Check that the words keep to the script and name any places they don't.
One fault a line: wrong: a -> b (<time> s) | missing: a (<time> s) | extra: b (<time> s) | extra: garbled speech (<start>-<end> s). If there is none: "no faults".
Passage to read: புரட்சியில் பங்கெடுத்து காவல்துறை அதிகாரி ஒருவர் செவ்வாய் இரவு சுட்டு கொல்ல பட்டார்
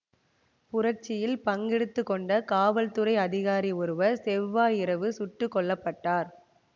extra: கொண்ட (2.0 s)